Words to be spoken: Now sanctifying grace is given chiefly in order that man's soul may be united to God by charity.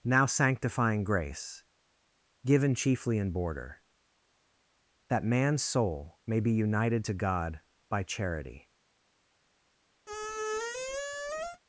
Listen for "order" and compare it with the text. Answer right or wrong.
wrong